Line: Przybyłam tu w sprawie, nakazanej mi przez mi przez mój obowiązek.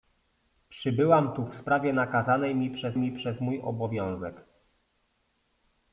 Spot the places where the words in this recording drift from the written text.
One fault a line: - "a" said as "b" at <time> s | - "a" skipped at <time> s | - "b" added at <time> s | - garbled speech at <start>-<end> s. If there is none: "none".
none